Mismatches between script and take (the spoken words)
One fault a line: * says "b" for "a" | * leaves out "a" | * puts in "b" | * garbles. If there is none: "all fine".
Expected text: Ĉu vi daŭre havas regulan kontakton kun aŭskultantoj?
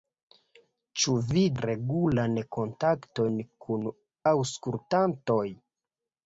* leaves out "daŭre havas"